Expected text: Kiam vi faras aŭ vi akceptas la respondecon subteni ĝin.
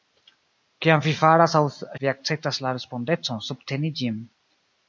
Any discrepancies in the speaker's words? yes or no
no